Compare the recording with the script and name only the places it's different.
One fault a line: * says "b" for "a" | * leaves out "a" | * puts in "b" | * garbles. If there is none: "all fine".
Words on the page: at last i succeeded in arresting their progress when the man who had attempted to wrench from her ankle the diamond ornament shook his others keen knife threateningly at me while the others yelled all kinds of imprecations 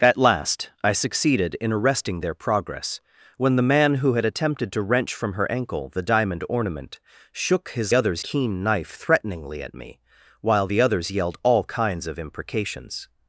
all fine